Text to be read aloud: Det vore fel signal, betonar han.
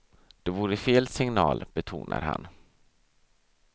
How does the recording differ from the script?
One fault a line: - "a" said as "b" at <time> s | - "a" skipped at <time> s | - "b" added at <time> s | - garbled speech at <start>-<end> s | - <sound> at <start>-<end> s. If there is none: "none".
none